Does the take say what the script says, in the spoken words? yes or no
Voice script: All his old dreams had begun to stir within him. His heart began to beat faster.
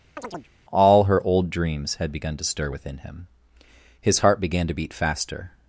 no